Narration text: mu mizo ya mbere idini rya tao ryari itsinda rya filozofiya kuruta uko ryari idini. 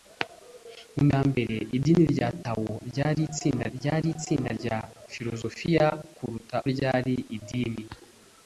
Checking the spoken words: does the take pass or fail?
fail